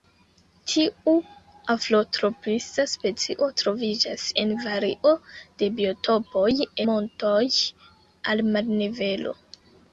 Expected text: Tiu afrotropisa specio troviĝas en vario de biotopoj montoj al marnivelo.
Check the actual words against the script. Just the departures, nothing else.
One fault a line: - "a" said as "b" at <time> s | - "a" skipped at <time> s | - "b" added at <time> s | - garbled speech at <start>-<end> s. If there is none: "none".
none